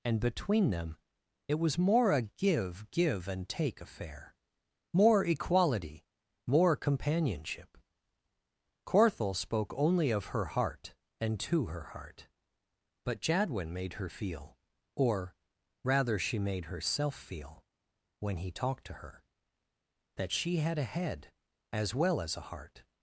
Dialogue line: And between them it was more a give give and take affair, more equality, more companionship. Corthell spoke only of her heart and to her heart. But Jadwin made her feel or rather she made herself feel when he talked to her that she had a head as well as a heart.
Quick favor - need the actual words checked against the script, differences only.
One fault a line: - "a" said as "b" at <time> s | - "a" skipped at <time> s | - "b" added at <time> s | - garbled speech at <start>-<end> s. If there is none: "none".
none